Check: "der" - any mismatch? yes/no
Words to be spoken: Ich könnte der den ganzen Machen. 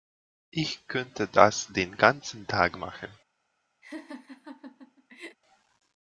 yes